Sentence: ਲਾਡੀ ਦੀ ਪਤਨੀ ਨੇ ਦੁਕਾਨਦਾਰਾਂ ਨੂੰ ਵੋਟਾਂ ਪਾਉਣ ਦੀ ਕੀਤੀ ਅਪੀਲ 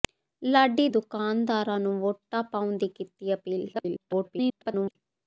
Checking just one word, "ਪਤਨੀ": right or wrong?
wrong